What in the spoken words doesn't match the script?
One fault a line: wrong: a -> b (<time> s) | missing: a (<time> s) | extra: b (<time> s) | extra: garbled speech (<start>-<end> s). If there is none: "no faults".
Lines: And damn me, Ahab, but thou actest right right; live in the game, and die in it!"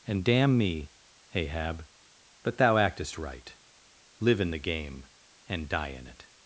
missing: right (3.5 s)